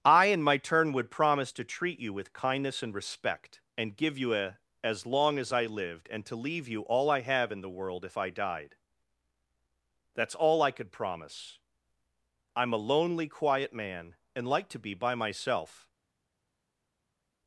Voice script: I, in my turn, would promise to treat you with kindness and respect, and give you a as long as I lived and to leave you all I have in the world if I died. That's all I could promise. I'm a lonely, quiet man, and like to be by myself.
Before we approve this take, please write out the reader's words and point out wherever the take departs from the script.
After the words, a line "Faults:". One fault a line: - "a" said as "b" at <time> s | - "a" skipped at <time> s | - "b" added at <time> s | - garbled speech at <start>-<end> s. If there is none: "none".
I, in my turn, would promise to treat you with kindness and respect, and give you a as long as I lived and to leave you all I have in the world if I died. That's all I could promise. I'm a lonely, quiet man, and like to be by myself.
Faults:
none